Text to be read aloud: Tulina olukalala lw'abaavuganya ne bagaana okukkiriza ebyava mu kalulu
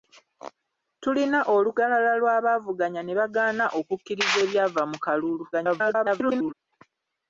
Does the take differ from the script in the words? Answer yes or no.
yes